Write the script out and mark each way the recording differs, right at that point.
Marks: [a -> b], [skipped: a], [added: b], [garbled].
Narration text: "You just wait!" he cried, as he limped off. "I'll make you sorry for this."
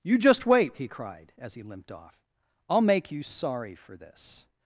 "You just wait!" he cried, as he limped off. "I'll make you sorry for this."